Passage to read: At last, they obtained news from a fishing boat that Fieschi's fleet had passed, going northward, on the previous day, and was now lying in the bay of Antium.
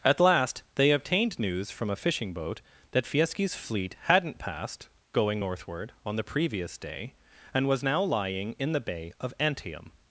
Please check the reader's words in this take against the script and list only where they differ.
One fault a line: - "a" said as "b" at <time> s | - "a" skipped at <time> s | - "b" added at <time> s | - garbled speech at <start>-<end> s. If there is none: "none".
- "had" said as "hadn't" at 4.0 s